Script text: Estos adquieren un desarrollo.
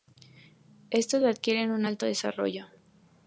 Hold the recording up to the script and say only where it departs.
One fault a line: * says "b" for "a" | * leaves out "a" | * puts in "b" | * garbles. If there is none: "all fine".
* puts in "alto"